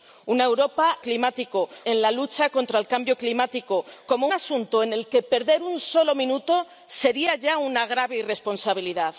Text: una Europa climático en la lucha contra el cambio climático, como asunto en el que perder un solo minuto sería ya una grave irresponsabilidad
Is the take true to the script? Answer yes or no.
yes